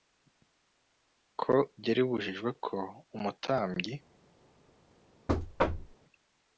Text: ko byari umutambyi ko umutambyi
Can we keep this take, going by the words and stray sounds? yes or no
no